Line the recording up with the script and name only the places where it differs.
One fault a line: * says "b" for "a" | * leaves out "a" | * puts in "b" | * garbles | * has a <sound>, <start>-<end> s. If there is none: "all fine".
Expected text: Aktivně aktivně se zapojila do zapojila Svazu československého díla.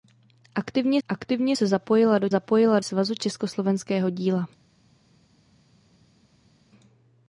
all fine